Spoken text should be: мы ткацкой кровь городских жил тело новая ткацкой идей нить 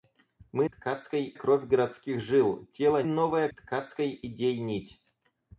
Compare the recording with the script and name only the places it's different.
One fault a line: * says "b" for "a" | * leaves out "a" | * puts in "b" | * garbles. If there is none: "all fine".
all fine